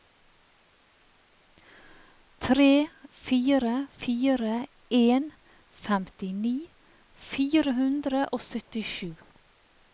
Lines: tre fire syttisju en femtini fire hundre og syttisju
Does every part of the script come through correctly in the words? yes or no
no